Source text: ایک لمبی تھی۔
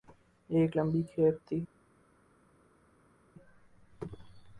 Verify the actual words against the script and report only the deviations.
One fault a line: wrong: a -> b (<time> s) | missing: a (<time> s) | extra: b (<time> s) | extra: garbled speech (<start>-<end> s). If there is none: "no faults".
extra: کھیپ (1.1 s)